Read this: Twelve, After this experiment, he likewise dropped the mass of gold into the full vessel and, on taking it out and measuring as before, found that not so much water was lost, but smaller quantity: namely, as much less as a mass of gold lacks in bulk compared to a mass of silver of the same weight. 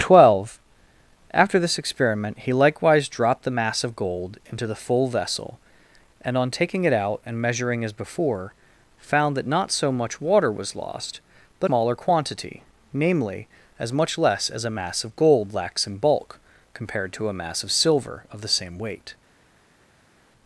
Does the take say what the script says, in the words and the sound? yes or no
yes